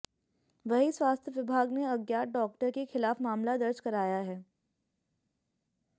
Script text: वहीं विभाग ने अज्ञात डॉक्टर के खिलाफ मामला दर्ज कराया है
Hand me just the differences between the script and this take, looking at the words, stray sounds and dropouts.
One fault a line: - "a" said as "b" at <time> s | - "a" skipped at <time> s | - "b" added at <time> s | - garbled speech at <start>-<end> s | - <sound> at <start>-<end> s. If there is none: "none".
- "स्वास्थ्य" added at 0.9 s